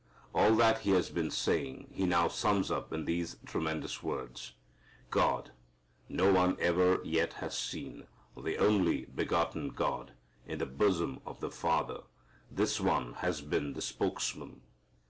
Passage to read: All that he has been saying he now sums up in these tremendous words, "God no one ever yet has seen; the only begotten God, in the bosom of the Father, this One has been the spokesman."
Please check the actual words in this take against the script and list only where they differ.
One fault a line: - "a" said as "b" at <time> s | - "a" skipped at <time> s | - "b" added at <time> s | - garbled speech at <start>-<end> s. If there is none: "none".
none